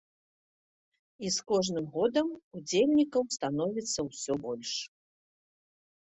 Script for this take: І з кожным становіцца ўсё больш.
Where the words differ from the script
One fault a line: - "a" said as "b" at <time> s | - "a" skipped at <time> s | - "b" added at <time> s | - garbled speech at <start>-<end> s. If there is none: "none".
- "годам удзельнікаў" added at 2.0 s